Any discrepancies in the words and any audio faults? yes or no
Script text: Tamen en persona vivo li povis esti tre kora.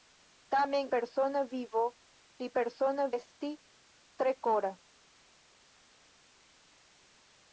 yes